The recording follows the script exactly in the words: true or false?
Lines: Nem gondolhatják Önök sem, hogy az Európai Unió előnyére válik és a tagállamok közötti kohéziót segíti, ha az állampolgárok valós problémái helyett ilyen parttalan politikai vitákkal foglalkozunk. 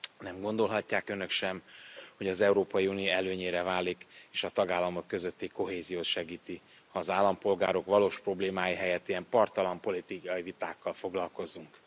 true